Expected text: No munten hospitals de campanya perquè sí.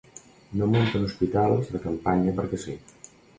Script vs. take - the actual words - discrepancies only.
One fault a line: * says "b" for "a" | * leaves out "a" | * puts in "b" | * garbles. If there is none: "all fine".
all fine